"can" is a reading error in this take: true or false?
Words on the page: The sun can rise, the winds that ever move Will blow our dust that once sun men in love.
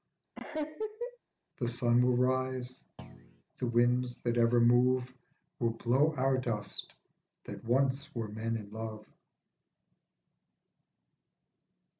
true